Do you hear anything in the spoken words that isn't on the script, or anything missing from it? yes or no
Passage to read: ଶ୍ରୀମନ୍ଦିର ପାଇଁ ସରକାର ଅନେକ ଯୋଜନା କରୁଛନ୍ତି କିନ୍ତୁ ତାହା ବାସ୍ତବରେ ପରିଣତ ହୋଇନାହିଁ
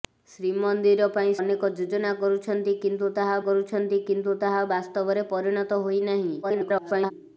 yes